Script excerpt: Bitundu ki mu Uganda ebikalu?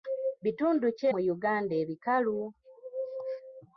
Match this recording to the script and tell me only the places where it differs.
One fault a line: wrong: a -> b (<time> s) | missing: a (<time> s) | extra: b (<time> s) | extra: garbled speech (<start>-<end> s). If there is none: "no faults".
no faults